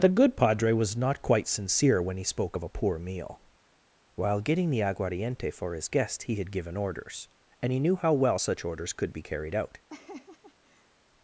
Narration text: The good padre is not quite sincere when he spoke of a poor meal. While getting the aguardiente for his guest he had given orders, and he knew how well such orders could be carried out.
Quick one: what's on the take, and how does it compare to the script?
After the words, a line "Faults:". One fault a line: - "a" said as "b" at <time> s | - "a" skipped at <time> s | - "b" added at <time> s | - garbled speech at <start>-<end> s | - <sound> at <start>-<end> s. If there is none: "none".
The good padre was not quite sincere when he spoke of a poor meal. While getting the aguardiente for his guest he had given orders, and he knew how well such orders could be carried out.
Faults:
- "is" said as "was" at 0.7 s
- laugh at 9.9-11.0 s